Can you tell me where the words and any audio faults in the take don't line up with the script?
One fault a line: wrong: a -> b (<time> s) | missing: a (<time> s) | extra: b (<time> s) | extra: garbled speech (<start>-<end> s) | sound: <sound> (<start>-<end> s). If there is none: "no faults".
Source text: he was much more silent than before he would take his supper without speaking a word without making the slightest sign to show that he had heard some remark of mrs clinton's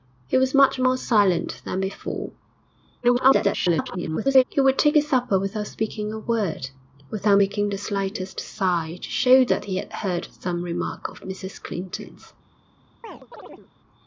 extra: garbled speech (3.0-4.4 s)
sound: chirp (13.0-13.7 s)